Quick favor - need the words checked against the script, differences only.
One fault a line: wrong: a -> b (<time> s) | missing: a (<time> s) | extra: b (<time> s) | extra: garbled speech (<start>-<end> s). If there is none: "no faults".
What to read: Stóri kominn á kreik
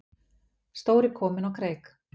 no faults